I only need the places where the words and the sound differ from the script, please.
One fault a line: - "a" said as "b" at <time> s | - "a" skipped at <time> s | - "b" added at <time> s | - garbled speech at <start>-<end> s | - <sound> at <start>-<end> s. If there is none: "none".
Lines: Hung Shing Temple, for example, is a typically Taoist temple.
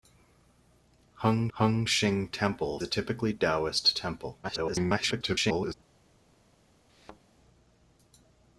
- "hung" added at 1.5 s
- "for example is" skipped at 2.8 s
- garbled speech at 4.4-5.7 s
- thud at 6.9-7.2 s